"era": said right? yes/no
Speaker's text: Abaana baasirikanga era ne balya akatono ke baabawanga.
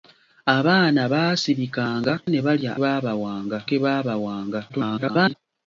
no